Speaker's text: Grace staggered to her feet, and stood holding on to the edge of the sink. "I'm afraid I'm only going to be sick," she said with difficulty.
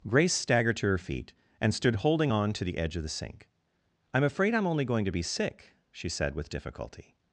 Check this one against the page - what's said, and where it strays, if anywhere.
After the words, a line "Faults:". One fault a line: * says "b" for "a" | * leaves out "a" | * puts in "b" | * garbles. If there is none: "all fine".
Grace staggered to her feet, and stood holding on to the edge of the sink. "I'm afraid I'm only going to be sick," she said with difficulty.
Faults:
all fine